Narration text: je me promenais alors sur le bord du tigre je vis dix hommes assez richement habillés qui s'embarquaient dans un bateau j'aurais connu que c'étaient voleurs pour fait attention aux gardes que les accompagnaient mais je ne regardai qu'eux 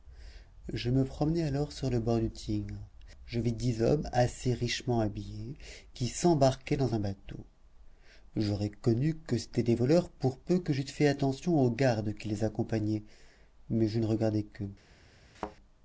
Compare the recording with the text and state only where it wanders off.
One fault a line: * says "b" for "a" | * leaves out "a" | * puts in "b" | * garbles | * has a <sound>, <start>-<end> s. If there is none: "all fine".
* puts in "des"
* puts in "peu que j'eusse"
* says "qui" for "que"
* has a thud, 15.3-15.6 s